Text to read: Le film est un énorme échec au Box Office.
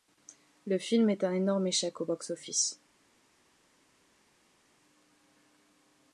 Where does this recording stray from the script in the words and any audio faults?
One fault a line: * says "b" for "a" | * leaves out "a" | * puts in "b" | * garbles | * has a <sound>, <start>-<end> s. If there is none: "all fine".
all fine